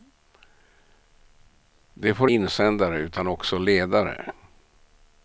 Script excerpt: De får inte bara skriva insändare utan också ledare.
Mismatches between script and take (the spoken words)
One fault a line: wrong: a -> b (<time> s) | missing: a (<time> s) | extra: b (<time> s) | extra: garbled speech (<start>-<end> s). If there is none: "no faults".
missing: inte bara skriva (2.3 s)